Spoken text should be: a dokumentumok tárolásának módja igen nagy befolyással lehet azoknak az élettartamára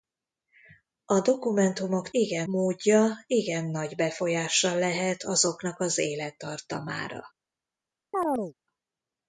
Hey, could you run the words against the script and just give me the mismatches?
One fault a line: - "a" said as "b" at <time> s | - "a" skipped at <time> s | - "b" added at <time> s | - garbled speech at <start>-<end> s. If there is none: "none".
- "tárolásának" said as "igen" at 2.1 s